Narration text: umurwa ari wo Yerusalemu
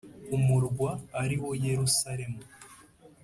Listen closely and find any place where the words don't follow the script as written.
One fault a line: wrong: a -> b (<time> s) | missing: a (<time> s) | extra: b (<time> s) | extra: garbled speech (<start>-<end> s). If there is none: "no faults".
no faults